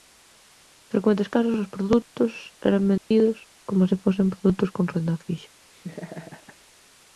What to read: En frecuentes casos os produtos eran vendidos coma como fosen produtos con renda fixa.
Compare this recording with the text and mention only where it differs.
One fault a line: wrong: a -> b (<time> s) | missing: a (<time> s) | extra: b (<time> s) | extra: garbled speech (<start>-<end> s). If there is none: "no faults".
wrong: como -> se (3.9 s)